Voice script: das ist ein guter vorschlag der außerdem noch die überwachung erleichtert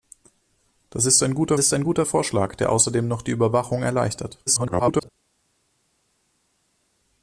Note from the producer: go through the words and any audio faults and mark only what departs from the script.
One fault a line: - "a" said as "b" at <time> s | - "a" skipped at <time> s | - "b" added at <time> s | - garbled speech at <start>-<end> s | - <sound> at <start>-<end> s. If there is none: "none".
- "ist ein guter" added at 1.6 s
- garbled speech at 4.5-5.1 s